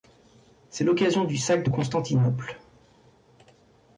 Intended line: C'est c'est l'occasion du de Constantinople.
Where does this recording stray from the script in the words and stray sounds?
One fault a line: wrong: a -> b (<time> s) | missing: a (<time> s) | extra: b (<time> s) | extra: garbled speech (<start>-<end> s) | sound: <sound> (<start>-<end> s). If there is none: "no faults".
missing: c'est (0.8 s)
extra: sac (1.4 s)